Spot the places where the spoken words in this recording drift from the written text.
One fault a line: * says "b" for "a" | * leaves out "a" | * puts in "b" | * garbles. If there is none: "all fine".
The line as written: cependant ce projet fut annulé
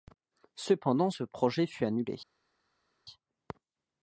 all fine